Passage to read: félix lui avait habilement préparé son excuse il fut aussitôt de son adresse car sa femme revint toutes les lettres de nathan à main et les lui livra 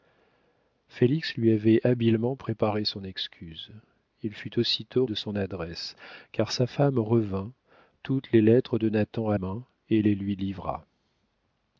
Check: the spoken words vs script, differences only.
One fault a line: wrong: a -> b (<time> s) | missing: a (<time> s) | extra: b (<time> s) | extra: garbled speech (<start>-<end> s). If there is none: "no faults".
no faults